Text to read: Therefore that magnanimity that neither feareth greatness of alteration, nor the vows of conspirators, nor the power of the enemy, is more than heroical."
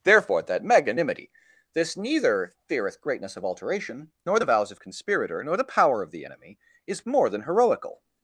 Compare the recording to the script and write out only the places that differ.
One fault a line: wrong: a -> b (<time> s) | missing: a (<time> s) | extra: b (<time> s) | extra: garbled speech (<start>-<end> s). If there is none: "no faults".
wrong: that -> this (1.7 s)
wrong: conspirators -> conspirator (4.8 s)